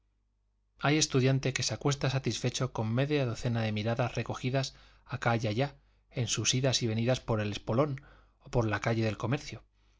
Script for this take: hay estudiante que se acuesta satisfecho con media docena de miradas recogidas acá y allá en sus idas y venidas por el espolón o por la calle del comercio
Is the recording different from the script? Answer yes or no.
no